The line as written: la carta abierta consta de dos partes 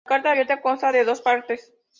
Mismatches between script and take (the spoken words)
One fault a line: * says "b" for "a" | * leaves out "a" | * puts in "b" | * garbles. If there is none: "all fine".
all fine